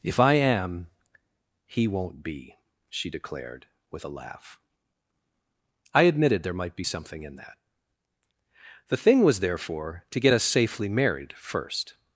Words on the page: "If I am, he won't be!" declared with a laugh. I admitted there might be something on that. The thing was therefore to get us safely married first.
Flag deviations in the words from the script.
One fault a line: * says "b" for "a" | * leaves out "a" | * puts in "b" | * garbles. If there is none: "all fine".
* puts in "she"
* says "in" for "on"